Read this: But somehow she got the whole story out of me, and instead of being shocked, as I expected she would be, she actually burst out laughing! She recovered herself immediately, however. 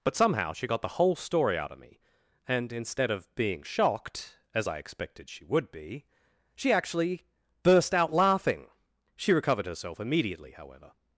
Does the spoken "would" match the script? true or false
true